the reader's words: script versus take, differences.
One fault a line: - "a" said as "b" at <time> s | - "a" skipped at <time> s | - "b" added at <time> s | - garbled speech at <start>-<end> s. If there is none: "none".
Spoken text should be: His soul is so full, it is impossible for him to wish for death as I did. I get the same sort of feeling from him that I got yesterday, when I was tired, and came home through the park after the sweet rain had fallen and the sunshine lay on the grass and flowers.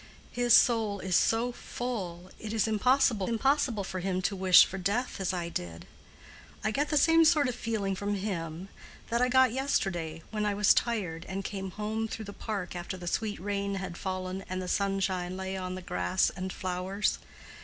- "impossible" added at 3.3 s